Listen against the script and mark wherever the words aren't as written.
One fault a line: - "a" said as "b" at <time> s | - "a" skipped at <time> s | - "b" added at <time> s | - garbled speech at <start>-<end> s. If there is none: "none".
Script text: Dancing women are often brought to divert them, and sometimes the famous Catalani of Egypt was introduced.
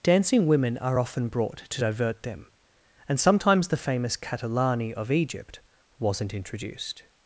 - "was" said as "wasn't" at 6.0 s